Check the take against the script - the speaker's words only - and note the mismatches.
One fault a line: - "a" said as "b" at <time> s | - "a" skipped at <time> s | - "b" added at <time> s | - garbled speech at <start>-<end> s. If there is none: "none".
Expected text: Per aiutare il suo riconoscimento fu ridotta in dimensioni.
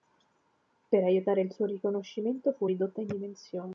none